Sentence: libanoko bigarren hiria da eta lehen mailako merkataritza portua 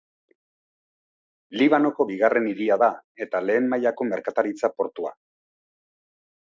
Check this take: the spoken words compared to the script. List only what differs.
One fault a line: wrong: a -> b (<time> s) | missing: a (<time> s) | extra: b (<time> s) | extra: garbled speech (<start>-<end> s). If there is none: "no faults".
no faults